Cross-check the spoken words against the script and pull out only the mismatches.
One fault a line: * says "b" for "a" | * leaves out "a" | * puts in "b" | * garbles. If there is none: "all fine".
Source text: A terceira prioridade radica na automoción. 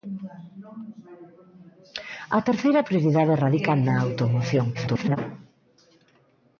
* garbles